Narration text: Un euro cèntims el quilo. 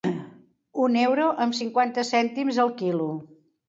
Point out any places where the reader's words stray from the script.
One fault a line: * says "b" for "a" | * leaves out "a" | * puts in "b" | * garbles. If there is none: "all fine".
* puts in "amb cinquanta"